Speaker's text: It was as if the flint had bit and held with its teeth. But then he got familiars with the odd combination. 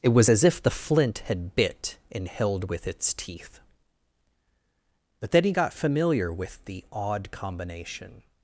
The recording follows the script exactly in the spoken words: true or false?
false